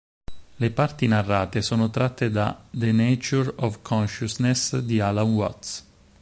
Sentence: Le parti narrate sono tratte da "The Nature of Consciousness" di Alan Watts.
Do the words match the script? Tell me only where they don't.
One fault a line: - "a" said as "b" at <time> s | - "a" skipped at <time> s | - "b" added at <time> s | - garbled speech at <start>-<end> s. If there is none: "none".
none